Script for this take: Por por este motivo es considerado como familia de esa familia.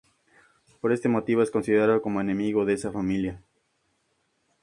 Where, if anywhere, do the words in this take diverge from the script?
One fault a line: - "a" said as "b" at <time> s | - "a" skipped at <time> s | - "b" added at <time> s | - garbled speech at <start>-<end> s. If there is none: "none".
- "por" skipped at 0.9 s
- "familia" said as "enemigo" at 2.2 s